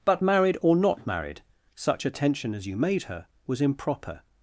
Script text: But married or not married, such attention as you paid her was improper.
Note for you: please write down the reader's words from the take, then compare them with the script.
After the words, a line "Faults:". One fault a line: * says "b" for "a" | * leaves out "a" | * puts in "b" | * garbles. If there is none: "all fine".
But married or not married, such attention as you made her was improper.
Faults:
* says "made" for "paid"